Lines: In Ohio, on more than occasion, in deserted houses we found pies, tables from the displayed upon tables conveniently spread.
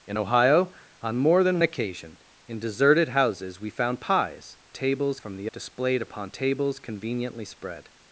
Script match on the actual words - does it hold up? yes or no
yes